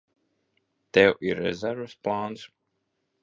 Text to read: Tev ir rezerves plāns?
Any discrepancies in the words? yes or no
no